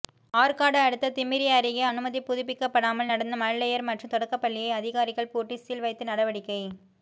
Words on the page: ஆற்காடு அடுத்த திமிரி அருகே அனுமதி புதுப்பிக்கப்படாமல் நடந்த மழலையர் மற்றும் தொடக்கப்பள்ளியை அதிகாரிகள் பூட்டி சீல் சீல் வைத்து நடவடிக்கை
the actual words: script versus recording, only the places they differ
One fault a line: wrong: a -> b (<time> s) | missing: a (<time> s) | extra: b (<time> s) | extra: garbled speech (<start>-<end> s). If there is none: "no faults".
missing: சீல் (5.8 s)